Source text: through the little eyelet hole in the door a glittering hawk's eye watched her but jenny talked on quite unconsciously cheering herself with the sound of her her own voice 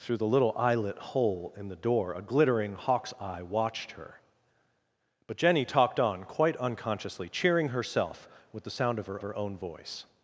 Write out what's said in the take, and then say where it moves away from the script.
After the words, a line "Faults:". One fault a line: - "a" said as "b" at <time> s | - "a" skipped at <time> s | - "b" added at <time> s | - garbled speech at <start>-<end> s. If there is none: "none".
through the little eyelet hole in the door a glittering hawk's eye watched her but jenny talked on quite unconsciously cheering herself with the sound of her her own voice
Faults:
none